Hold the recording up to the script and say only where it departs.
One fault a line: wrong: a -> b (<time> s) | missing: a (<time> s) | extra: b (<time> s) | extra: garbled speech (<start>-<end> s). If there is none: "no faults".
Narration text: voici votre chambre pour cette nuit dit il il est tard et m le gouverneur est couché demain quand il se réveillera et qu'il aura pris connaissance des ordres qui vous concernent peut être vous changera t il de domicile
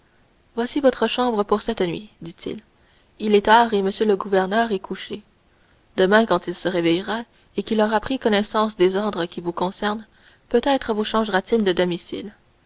no faults